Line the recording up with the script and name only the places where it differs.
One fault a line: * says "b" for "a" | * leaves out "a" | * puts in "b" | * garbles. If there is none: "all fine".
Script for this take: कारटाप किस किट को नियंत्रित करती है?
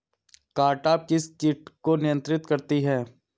all fine